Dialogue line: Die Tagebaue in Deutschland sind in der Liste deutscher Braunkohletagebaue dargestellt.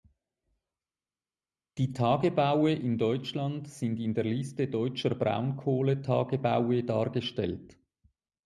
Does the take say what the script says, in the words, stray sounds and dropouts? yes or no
yes